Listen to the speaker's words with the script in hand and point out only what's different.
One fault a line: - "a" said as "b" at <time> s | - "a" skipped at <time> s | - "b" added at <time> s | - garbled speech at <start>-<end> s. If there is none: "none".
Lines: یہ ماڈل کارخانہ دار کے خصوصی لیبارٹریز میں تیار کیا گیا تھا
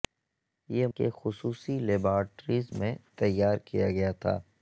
- "ماڈل کارخانہ دار" skipped at 0.9 s